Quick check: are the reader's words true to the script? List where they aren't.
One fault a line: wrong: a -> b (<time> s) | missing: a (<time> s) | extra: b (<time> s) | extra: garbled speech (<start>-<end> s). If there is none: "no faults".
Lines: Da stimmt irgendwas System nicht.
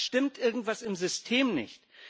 extra: im (0.8 s)